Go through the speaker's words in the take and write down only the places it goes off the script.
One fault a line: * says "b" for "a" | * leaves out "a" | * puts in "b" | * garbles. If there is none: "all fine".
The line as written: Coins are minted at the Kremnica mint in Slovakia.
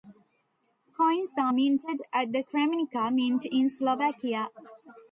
all fine